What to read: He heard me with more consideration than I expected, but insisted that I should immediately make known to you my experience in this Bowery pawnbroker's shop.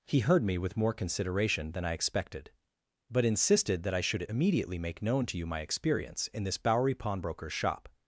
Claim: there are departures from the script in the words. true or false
false